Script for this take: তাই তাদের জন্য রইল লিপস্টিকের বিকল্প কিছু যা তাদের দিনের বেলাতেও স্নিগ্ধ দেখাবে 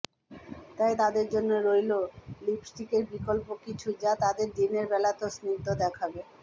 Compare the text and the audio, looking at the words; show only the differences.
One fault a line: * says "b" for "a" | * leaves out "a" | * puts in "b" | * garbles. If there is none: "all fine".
all fine